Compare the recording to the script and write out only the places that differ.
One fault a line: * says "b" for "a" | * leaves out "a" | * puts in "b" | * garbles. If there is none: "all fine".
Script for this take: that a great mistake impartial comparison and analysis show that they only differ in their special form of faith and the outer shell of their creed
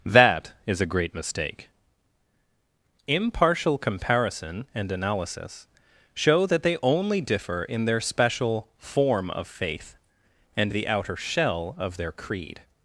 * puts in "is"